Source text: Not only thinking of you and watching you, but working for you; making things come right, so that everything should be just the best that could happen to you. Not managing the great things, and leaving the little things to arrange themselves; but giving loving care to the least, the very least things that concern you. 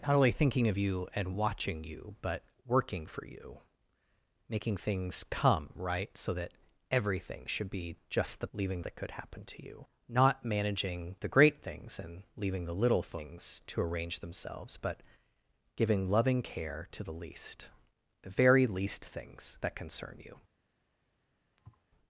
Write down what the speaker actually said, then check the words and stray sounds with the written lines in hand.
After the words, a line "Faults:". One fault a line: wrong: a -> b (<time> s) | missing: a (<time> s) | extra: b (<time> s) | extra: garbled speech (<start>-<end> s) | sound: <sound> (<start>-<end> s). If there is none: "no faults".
Not only thinking of you and watching you, but working for you; making things come right, so that everything should be just the leaving that could happen to you. Not managing the great things, and leaving the little things to arrange themselves; but giving loving care to the least, the very least things that concern you.
Faults:
wrong: best -> leaving (8.5 s)
sound: thud (21.6-21.9 s)